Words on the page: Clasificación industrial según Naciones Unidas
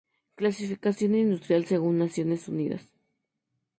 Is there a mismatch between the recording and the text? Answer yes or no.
no